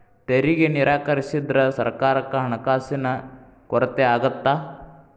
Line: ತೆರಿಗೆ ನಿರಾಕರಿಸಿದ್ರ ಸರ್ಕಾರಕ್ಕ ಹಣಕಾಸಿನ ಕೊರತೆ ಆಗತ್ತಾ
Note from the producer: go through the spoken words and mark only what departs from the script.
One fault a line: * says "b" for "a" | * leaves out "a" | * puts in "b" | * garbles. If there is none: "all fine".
all fine